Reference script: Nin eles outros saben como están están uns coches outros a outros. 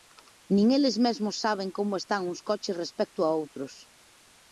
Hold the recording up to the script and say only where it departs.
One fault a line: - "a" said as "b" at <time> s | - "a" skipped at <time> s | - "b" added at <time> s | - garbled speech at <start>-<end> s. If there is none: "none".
- "outros" said as "mesmos" at 1.1 s
- "están" skipped at 2.2 s
- "outros" said as "respecto" at 2.8 s